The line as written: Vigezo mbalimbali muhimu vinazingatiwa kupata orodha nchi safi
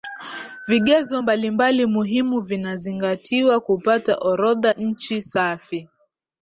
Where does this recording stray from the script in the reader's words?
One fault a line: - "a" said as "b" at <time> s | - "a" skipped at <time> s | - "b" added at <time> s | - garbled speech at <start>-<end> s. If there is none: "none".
none